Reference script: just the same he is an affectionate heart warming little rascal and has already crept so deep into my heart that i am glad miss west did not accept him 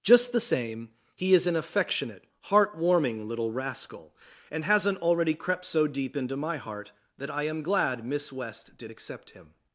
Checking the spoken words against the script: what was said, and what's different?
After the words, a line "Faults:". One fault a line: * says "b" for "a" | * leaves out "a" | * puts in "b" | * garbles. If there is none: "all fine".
just the same he is an affectionate heart warming little rascal and hasn't already crept so deep into my heart that i am glad miss west did accept him
Faults:
* says "hasn't" for "has"
* leaves out "not"